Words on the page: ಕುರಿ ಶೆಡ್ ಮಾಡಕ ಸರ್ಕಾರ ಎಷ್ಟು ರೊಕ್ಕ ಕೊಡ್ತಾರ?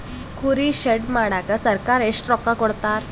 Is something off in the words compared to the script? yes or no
no